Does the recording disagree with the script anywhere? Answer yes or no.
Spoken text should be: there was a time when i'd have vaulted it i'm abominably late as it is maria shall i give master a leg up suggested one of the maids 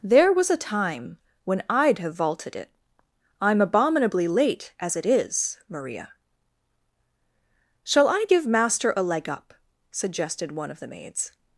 no